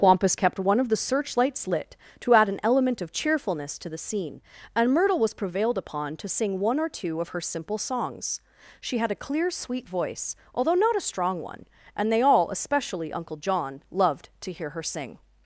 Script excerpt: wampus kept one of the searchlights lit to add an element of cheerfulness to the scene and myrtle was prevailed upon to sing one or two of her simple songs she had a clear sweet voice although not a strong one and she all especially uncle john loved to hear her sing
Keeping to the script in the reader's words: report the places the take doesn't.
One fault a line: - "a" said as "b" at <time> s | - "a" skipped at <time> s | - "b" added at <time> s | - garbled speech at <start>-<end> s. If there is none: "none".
- "she" said as "they" at 12.1 s